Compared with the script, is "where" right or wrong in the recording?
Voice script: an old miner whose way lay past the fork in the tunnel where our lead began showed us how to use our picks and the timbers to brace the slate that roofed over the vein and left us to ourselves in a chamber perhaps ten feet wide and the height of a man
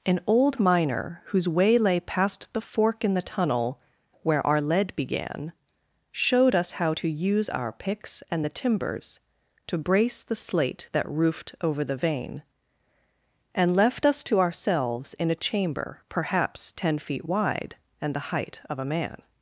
right